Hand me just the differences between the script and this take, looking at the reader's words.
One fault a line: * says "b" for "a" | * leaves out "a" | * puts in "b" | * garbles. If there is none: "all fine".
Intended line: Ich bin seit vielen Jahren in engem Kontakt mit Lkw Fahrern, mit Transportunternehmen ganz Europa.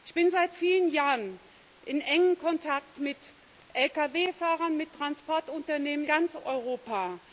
all fine